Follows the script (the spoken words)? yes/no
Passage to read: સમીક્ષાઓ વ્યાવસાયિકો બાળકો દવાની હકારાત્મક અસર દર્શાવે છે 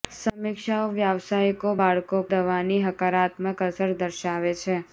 yes